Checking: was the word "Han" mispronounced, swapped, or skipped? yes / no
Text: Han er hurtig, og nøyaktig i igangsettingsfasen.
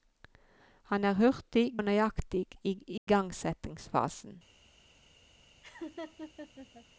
no